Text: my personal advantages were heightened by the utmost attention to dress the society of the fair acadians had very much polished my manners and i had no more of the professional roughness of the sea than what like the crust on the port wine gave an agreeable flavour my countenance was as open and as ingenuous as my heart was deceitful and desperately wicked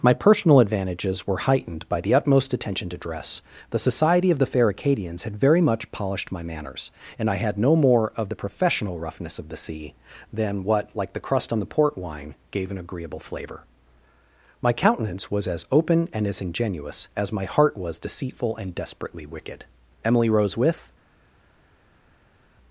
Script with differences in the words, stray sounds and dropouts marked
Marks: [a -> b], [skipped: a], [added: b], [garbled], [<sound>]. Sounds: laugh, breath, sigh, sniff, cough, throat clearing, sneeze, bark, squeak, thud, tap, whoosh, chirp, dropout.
my personal advantages were heightened by the utmost attention to dress the society of the fair acadians had very much polished my manners and i had no more of the professional roughness of the sea than what like the crust on the port wine gave an agreeable flavour my countenance was as open and as ingenuous as my heart was deceitful and desperately wicked [added: emily rose with]